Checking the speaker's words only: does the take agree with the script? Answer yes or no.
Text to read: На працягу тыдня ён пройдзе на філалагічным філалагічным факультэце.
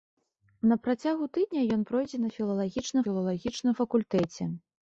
yes